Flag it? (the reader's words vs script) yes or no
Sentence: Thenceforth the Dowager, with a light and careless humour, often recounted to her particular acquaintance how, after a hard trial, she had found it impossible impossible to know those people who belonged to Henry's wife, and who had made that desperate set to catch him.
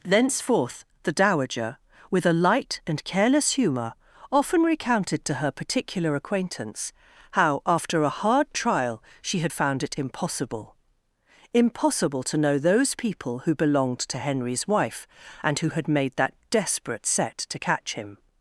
no